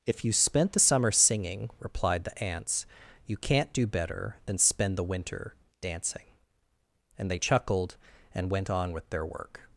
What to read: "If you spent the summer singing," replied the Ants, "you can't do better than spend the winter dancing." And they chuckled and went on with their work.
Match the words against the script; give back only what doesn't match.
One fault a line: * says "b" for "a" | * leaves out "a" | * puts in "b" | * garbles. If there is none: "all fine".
all fine